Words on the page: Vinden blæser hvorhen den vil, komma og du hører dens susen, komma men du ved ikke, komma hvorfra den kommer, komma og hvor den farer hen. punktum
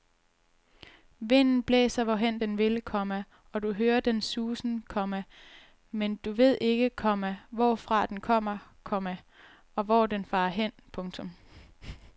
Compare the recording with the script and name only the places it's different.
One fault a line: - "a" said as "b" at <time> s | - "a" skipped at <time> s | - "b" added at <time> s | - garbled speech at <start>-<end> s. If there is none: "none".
none